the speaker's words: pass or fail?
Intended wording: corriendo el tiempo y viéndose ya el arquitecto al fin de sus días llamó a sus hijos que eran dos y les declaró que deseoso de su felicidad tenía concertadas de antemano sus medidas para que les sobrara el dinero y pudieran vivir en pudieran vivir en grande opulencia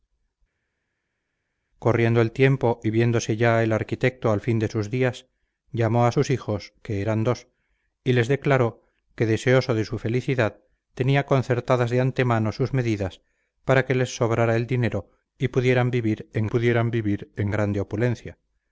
pass